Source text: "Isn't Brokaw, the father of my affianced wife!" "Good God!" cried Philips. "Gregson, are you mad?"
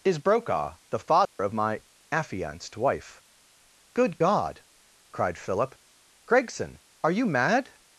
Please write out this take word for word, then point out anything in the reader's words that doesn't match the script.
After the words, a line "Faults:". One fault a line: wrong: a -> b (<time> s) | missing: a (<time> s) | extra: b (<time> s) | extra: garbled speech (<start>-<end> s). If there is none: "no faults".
"Is Brokaw, the father of my affianced wife!" "Good God!" cried Philip. "Gregson, are you mad?"
Faults:
wrong: Isn't -> Is (0.0 s)
wrong: Philips -> Philip (5.4 s)